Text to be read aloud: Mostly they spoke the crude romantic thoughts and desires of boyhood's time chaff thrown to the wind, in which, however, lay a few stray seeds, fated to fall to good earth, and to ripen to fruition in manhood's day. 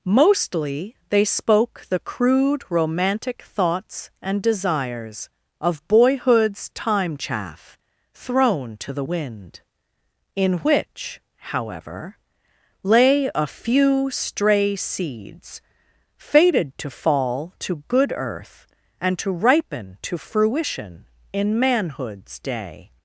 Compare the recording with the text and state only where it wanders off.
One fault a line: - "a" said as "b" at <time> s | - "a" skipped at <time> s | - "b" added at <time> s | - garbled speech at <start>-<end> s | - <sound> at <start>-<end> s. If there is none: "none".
none